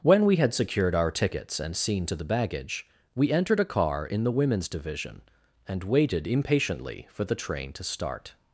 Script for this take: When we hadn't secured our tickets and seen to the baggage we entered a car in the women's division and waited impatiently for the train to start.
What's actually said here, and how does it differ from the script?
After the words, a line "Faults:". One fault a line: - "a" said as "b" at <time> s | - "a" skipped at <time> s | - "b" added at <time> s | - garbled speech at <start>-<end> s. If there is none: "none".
When we had secured our tickets and seen to the baggage we entered a car in the women's division and waited impatiently for the train to start.
Faults:
- "hadn't" said as "had" at 0.4 s